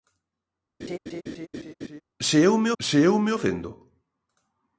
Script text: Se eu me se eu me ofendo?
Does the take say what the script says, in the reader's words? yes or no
yes